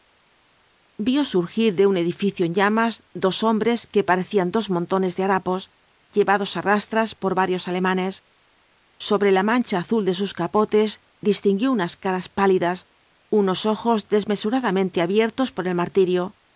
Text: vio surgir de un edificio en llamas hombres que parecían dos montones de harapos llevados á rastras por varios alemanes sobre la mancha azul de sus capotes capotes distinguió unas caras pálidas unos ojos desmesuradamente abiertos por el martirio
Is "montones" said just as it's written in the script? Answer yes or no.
yes